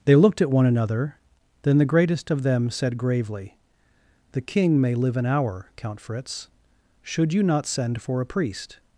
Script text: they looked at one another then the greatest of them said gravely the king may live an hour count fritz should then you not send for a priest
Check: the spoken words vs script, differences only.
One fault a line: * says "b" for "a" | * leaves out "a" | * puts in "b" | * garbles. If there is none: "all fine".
* leaves out "then"